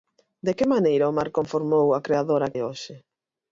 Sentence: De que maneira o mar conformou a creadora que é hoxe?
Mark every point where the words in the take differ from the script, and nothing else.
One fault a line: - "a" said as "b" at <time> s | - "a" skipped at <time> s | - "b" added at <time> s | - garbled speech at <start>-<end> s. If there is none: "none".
- "que" skipped at 2.5 s